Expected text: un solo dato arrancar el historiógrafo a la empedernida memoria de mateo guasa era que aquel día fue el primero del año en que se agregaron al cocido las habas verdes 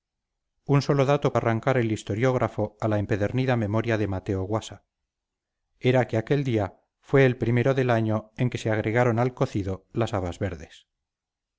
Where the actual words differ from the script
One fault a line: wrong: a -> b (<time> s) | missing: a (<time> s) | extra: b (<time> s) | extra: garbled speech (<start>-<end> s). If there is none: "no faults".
no faults